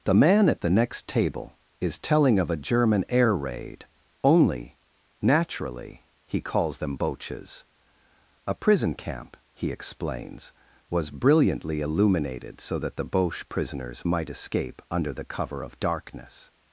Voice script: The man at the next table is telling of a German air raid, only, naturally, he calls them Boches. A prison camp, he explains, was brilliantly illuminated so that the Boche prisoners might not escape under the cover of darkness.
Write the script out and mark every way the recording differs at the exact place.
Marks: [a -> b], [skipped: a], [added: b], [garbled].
The man at the next table is telling of a German air raid, only, naturally, he calls them Boches. A prison camp, he explains, was brilliantly illuminated so that the Boche prisoners might [skipped: not] escape under the cover of darkness.